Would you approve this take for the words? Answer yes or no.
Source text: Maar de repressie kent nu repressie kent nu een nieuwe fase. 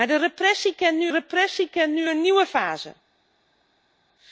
yes